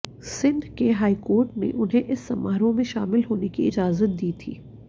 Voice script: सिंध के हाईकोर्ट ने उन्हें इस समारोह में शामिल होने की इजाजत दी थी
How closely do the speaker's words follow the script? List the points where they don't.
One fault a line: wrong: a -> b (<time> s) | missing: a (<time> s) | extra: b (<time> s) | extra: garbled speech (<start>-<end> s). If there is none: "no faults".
no faults